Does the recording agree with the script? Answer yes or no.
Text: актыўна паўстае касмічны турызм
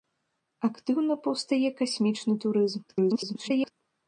no